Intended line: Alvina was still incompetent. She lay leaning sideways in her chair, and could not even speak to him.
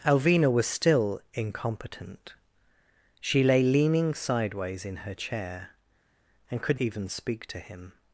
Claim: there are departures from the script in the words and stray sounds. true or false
true